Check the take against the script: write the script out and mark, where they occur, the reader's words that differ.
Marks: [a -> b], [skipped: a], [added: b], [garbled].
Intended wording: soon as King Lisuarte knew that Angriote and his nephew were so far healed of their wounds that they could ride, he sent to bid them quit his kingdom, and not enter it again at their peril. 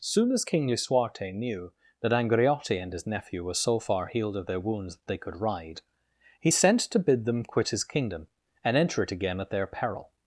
soon as King Lisuarte knew that Angriote and his nephew were so far healed of their wounds that they could ride, he sent to bid them quit his kingdom, and [skipped: not] enter it again at their peril.